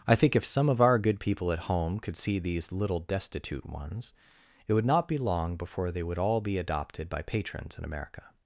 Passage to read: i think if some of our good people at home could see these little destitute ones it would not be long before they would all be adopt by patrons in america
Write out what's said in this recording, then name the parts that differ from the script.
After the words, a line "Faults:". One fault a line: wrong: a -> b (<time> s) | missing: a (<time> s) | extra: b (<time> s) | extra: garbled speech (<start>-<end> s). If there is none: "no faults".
i think if some of our good people at home could see these little destitute ones it would not be long before they would all be adopted by patrons in america
Faults:
wrong: adopt -> adopted (6.6 s)